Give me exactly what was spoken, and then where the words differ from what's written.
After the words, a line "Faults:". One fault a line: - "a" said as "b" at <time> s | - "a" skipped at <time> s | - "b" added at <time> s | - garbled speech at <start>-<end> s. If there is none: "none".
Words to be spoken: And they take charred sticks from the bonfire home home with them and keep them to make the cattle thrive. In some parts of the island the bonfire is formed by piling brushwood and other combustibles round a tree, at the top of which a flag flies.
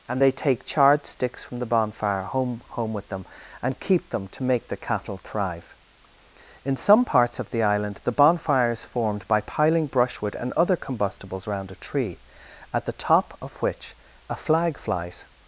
And they take charred sticks from the bonfire home home with them and keep them to make the cattle thrive. In some parts of the island the bonfire is formed by piling brushwood and other combustibles round a tree, at the top of which a flag flies.
Faults:
none